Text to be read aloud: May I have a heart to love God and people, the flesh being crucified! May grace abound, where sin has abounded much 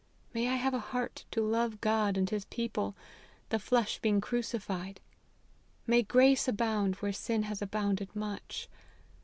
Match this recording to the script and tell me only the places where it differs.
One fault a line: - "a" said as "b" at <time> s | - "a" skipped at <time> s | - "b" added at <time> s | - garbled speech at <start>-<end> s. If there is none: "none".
- "his" added at 2.3 s